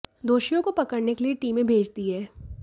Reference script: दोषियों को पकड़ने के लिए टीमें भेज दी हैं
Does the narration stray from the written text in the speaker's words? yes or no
no